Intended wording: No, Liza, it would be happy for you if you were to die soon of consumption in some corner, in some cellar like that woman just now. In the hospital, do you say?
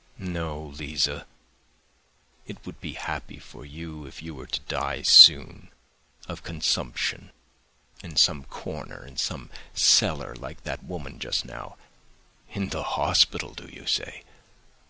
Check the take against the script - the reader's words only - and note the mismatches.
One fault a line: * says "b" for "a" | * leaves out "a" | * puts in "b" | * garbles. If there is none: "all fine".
all fine